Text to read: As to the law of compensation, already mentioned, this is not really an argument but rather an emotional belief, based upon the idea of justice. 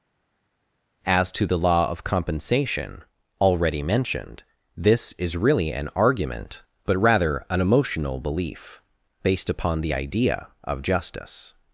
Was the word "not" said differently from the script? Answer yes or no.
yes